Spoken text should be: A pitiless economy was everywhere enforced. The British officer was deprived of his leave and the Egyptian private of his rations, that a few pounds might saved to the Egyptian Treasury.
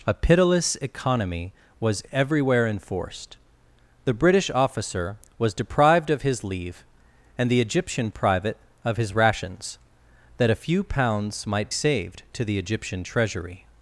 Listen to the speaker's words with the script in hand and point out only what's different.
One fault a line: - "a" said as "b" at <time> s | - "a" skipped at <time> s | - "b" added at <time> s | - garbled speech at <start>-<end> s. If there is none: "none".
none